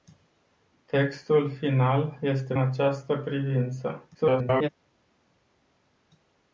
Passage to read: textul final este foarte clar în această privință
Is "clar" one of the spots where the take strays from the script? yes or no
yes